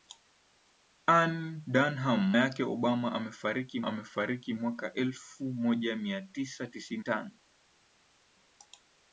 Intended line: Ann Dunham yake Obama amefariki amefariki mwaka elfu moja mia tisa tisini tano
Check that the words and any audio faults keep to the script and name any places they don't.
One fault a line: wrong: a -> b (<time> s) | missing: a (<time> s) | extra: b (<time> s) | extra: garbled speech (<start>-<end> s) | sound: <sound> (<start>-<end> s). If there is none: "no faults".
no faults